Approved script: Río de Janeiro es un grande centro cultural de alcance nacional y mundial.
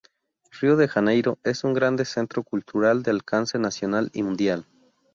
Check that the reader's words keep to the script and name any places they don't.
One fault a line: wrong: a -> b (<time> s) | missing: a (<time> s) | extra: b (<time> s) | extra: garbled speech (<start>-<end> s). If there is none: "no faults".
no faults